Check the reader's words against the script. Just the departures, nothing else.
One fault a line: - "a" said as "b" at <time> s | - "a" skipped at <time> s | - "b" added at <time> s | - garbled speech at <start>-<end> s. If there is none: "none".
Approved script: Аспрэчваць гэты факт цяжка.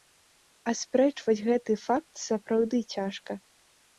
- "сапраўды" added at 2.3 s